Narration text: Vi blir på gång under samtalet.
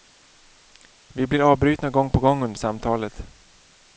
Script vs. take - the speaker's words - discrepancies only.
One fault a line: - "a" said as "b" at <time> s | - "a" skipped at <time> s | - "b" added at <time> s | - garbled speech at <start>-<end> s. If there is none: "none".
- "avbrytna gång" added at 1.5 s